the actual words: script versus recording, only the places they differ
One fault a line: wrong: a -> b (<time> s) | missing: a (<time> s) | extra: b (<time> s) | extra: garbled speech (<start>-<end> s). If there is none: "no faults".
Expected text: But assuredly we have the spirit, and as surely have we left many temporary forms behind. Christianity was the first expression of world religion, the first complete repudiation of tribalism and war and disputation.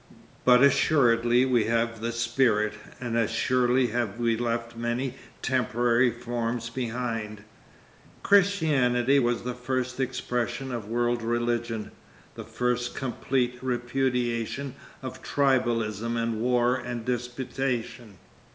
no faults